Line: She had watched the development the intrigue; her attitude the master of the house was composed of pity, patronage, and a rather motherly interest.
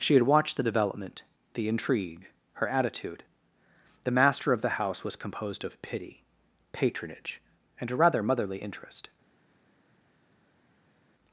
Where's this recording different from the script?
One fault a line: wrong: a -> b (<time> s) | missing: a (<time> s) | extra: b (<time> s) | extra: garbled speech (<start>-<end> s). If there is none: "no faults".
no faults